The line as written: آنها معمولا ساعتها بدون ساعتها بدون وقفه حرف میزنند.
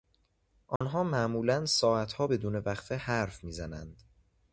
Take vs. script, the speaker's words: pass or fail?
fail